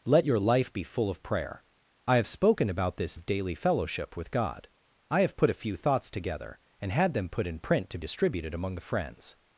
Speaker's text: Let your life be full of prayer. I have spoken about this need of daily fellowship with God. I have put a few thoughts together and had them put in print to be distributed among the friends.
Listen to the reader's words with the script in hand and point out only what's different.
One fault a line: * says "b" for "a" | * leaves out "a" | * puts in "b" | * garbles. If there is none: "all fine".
* leaves out "need"
* leaves out "be"